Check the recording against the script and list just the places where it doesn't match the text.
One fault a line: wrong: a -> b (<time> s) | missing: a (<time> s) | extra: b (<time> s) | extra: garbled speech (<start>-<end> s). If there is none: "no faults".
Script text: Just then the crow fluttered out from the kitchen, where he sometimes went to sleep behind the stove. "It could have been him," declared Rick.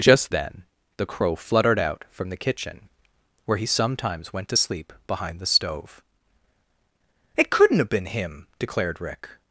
wrong: could -> couldn't (7.5 s)